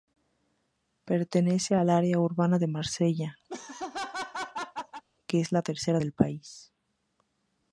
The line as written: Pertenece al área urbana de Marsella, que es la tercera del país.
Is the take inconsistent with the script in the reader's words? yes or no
no